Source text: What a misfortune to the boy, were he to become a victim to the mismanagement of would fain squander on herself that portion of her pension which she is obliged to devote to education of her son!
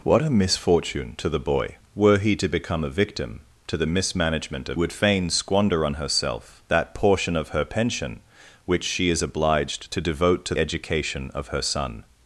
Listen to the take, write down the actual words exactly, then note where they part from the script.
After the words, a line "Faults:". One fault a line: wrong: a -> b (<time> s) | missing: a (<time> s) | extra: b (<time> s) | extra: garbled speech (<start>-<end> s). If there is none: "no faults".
What a misfortune to the boy, were he to become a victim to the mismanagement of would fain squander on herself that portion of her pension which she is obliged to devote to education of her son!
Faults:
no faults